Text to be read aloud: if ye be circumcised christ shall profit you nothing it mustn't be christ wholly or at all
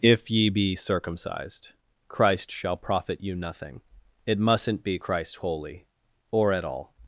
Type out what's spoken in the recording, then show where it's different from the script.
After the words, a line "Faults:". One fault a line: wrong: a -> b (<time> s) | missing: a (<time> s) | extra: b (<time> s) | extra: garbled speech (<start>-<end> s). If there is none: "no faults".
if ye be circumcised christ shall profit you nothing it mustn't be christ wholly or at all
Faults:
no faults